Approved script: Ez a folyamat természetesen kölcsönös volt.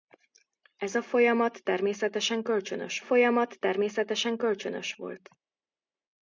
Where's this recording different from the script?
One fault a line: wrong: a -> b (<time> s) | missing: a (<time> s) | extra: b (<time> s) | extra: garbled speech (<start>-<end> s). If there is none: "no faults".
extra: folyamat természetesen kölcsönös (3.0 s)